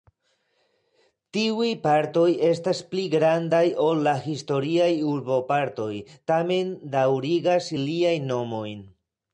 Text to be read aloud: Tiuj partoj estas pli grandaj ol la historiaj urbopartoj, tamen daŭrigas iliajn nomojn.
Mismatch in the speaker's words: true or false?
false